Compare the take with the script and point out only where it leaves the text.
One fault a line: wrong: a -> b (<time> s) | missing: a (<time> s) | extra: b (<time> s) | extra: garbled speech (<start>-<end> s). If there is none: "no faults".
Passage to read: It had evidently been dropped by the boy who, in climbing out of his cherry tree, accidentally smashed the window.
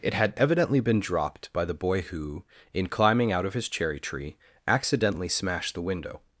no faults